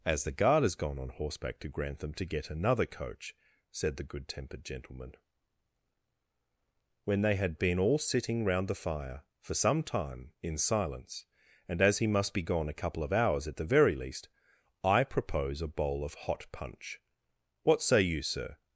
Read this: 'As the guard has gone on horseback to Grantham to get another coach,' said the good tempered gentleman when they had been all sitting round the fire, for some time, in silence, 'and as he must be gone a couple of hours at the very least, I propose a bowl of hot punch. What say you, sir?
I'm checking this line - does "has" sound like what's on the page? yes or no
yes